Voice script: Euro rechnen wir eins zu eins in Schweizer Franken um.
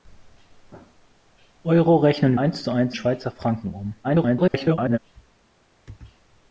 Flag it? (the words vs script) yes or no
yes